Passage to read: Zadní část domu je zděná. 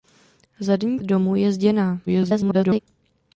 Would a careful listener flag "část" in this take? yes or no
yes